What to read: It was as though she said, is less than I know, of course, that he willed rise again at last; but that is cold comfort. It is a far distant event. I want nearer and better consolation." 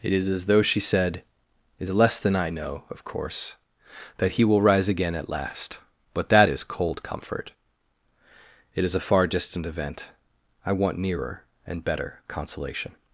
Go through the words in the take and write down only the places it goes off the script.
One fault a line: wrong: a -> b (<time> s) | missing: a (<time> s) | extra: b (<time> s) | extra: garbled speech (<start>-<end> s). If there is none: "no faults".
wrong: was -> is (0.1 s)
wrong: willed -> will (4.4 s)